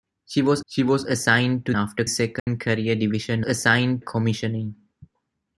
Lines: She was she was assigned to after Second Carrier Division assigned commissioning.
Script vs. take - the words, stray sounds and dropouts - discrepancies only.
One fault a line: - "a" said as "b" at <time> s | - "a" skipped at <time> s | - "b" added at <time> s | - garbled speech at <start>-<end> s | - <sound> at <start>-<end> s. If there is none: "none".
- dropout at 2.4-2.5 s